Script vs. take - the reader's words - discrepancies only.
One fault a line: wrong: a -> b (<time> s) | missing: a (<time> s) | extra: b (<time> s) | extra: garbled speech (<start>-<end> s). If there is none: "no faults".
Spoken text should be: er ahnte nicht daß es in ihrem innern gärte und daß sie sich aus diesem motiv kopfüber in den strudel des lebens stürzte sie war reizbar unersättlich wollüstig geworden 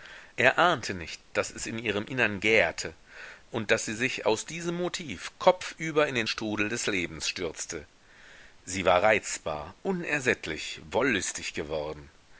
no faults